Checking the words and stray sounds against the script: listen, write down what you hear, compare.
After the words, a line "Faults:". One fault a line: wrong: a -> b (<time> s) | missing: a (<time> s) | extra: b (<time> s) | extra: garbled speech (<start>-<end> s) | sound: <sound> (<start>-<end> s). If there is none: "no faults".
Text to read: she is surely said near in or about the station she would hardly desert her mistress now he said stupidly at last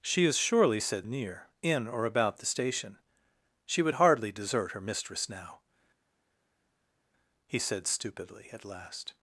she is surely said near in or about the station she would hardly desert her mistress now he said stupidly at last
Faults:
no faults